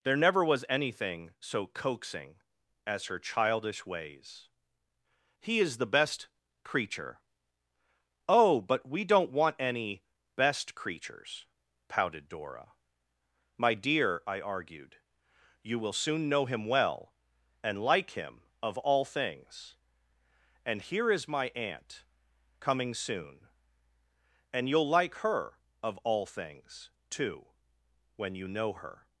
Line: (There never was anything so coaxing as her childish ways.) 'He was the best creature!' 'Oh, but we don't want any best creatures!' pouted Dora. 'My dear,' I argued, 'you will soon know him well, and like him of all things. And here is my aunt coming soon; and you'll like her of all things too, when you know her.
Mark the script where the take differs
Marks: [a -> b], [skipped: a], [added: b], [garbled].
(There never was anything so coaxing as her childish ways.) 'He [was -> is] the best creature!' 'Oh, but we don't want any best creatures!' pouted Dora. 'My dear,' I argued, 'you will soon know him well, and like him of all things. And here is my aunt coming soon; and you'll like her of all things too, when you know her.